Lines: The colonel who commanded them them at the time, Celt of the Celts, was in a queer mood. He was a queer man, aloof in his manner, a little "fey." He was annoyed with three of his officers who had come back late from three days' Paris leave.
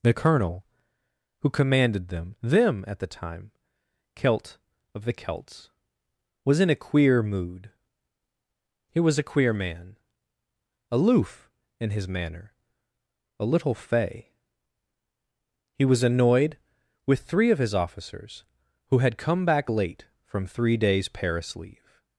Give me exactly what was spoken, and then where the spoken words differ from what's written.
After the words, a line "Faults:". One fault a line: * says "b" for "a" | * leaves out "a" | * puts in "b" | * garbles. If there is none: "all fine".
The colonel who commanded them them at the time, Celt of the Celts, was in a queer mood. He was a queer man, aloof in his manner, a little "fey." He was annoyed with three of his officers who had come back late from three days' Paris leave.
Faults:
all fine